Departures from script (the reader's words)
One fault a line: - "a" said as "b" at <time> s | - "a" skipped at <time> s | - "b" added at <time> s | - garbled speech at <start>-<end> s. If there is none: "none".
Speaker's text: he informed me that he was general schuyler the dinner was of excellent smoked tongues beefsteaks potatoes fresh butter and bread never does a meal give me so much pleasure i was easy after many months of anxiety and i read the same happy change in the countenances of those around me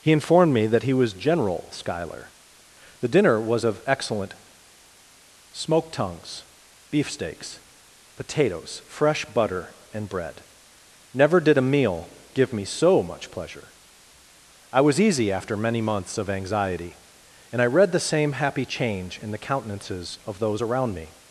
- "does" said as "did" at 11.4 s